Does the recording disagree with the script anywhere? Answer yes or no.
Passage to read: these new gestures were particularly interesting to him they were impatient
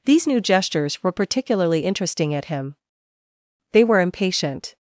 yes